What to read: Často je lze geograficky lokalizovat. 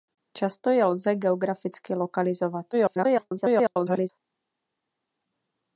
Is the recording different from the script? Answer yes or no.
yes